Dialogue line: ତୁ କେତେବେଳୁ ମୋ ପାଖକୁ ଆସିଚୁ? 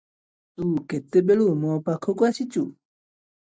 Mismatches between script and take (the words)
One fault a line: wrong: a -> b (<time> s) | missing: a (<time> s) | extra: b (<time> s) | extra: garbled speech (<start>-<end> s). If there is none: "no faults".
no faults